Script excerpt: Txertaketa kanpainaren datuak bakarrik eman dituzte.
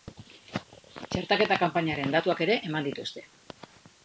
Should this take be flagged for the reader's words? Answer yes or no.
yes